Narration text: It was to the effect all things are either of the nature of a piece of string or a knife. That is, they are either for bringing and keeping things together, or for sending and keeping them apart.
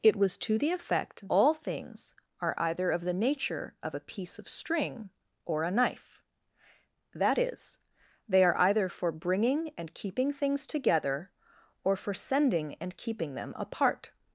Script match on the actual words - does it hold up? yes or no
yes